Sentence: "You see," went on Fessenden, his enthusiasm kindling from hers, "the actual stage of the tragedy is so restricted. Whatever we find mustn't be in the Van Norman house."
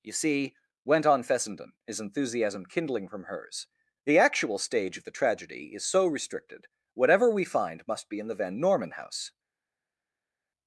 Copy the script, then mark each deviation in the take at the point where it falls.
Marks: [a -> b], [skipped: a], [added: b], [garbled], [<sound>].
"You see," went on Fessenden, his enthusiasm kindling from hers, "the actual stage of the tragedy is so restricted. Whatever we find [mustn't -> must] be in the Van Norman house."